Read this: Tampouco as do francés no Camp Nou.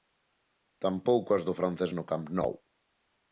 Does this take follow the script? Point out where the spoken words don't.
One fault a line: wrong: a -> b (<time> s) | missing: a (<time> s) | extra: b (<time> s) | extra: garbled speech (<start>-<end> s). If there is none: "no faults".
no faults